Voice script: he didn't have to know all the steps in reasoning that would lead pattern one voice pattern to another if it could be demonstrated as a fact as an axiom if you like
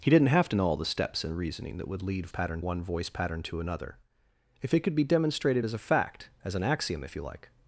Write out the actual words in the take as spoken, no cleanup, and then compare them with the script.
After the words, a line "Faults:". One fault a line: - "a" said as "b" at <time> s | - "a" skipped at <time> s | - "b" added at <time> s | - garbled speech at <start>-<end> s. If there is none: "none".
he didn't have to know all the steps in reasoning that would lead pattern one voice pattern to another if it could be demonstrated as a fact as an axiom if you like
Faults:
none